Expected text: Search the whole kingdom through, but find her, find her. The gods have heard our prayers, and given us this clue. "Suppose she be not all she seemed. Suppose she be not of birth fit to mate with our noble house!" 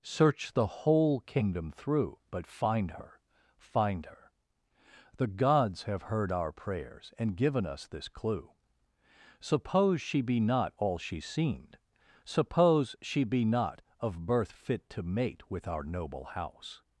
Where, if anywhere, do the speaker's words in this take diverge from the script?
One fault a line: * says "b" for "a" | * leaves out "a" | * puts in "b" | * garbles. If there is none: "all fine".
all fine